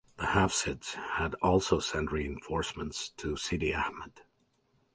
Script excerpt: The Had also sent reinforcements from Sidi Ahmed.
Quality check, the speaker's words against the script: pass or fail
fail